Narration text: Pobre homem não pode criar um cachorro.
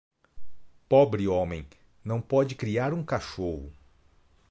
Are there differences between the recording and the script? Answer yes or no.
no